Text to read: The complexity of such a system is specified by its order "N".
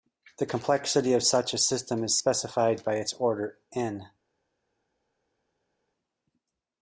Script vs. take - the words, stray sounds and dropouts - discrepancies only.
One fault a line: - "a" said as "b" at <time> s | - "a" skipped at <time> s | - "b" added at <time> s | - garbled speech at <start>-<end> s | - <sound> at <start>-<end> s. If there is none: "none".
none